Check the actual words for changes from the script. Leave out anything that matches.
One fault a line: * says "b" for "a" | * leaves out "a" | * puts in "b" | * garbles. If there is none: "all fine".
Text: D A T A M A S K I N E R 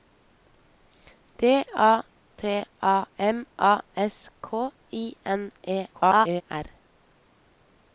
* garbles